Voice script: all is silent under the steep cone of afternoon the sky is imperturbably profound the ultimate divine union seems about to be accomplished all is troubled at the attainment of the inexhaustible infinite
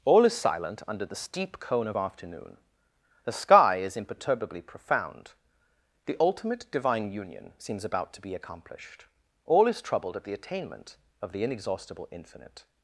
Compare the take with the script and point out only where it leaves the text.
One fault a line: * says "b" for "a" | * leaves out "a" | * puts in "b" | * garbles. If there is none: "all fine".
all fine